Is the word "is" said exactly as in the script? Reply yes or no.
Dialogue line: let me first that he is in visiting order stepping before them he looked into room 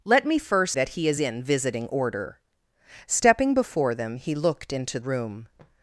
yes